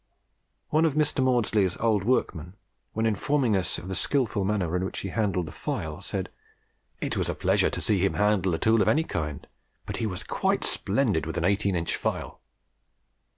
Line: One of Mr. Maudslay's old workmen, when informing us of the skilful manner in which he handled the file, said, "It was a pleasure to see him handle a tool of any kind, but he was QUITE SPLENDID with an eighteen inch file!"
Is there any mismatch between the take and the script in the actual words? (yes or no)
no